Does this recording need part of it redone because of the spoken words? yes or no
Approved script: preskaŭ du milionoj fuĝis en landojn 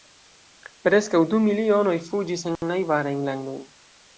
yes